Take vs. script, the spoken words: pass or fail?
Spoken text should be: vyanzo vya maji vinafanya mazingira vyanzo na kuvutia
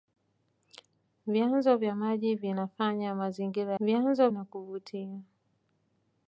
pass